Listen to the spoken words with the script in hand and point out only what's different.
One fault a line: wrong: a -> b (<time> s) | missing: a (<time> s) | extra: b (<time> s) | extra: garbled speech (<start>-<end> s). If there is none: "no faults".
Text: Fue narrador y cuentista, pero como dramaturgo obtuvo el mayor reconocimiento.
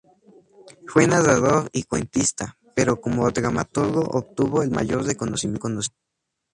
no faults